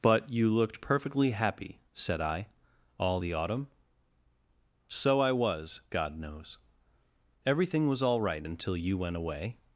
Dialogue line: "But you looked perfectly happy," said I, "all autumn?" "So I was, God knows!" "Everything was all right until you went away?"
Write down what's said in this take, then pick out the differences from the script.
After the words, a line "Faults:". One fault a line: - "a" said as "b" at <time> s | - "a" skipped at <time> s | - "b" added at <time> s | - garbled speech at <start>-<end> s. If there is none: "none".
"But you looked perfectly happy," said I, "all the autumn?" "So I was, God knows!" "Everything was all right until you went away?"
Faults:
- "the" added at 3.2 s